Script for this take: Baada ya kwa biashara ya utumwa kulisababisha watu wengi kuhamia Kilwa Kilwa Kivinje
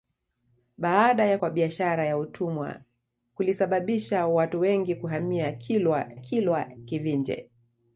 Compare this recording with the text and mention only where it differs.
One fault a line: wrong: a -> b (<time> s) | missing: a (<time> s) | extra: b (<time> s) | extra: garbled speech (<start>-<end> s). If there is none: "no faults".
no faults